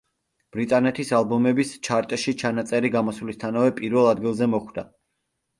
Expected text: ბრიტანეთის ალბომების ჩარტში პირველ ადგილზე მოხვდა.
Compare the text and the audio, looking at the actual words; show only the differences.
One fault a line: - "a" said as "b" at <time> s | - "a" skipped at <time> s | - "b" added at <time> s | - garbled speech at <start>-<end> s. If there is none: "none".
- "ჩანაწერი გამოსვლისთანავე" added at 2.5 s